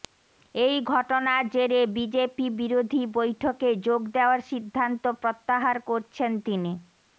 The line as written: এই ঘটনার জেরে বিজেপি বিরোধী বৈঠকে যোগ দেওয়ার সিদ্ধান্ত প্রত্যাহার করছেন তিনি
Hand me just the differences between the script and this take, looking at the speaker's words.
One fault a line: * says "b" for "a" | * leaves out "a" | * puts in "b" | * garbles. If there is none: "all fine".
all fine